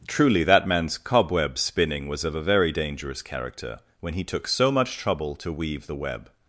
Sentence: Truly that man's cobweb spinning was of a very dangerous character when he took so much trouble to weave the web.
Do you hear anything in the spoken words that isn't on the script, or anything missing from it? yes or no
no